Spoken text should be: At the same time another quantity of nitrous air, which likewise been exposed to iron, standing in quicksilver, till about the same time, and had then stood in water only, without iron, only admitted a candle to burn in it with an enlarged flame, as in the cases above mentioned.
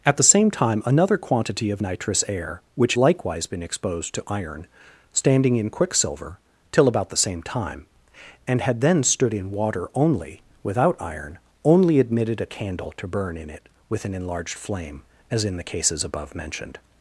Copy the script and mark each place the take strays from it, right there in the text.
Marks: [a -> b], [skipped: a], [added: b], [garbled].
At the same time another quantity of nitrous air, which likewise been exposed to iron, standing in quicksilver, till about the same time, and had then stood in water only, without iron, only admitted a candle to burn in it with an enlarged flame, as in the cases above mentioned.